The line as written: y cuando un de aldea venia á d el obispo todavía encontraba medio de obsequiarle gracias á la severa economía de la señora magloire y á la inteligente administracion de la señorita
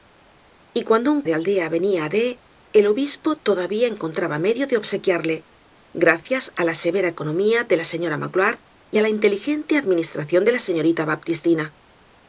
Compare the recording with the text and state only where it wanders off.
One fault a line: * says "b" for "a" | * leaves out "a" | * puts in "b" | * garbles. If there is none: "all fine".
all fine